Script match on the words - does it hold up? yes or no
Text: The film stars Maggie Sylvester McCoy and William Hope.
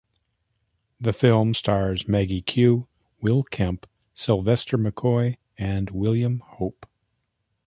no